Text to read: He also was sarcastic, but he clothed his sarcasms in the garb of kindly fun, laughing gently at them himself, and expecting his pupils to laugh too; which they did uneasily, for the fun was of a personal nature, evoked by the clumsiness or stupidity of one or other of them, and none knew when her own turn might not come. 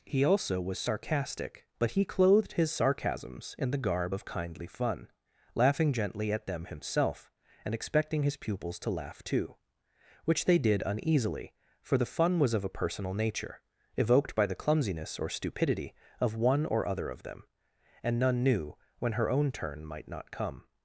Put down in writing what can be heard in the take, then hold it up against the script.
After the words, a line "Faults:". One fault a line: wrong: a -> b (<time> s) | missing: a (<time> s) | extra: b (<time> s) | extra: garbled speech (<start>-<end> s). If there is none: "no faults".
He also was sarcastic, but he clothed his sarcasms in the garb of kindly fun, laughing gently at them himself, and expecting his pupils to laugh too; which they did uneasily, for the fun was of a personal nature, evoked by the clumsiness or stupidity of one or other of them, and none knew when her own turn might not come.
Faults:
no faults